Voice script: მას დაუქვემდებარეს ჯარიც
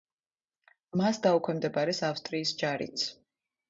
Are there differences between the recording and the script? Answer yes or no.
yes